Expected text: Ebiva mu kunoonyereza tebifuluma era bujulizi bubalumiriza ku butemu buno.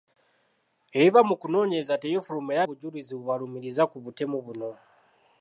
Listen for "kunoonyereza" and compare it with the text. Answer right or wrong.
right